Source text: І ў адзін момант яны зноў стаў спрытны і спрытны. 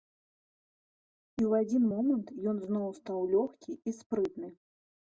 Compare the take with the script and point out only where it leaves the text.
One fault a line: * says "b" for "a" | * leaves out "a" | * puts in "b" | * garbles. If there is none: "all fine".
* says "ён" for "яны"
* says "лёгкі" for "спрытны"